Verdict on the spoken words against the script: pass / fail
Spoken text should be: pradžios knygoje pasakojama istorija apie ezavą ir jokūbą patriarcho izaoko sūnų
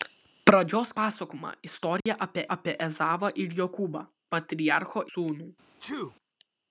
fail